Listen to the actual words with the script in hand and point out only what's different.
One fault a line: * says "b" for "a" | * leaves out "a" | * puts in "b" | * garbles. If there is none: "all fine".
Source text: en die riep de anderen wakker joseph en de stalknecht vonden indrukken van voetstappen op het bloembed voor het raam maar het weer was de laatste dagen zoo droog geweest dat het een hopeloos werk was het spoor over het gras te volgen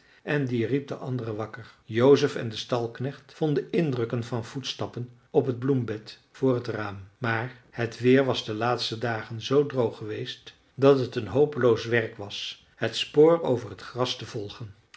all fine